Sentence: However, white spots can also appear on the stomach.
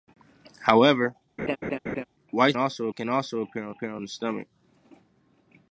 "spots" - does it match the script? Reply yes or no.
no